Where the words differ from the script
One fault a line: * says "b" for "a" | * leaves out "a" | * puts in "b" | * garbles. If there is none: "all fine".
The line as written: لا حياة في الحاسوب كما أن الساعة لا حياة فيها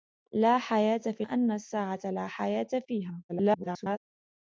* leaves out "الحاسوب كما"
* garbles